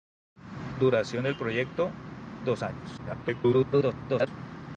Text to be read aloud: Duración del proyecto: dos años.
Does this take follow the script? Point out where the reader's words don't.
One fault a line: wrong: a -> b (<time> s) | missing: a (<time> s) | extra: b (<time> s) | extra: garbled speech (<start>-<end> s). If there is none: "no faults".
extra: garbled speech (3.0-4.3 s)